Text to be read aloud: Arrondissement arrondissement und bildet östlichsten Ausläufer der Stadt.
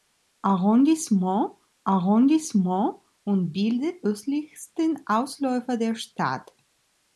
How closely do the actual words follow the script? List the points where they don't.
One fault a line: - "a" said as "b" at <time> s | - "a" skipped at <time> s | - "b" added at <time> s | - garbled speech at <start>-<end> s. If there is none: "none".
none